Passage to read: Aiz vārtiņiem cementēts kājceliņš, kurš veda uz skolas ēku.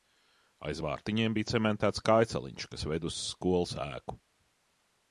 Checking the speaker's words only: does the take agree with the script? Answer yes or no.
no